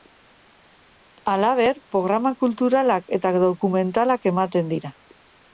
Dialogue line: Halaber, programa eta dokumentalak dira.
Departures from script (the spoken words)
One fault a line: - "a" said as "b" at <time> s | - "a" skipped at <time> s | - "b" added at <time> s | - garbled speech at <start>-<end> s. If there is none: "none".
- "kulturalak" added at 2.5 s
- "ematen" added at 4.3 s